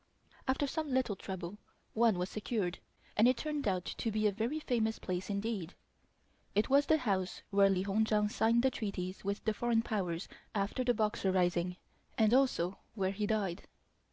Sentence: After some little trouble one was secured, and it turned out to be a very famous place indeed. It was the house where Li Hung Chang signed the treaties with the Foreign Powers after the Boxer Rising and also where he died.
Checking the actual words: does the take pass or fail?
pass